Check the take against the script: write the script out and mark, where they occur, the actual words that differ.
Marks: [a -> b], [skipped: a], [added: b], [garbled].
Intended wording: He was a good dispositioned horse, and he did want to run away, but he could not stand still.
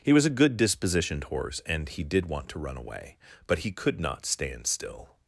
He was a good dispositioned horse, and he did want to run away, but he could not stand still.